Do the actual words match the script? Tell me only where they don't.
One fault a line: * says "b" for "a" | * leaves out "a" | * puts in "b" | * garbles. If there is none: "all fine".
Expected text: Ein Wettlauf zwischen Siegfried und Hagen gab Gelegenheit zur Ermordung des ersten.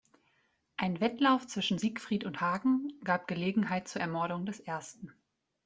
all fine